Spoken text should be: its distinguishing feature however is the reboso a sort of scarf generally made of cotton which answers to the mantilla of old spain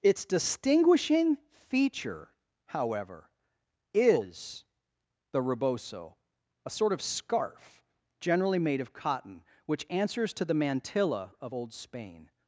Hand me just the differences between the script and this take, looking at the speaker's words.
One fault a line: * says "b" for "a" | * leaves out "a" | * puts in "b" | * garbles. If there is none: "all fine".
all fine